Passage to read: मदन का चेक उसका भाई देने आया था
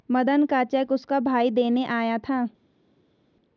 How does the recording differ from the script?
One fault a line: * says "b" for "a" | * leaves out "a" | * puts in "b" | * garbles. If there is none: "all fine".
all fine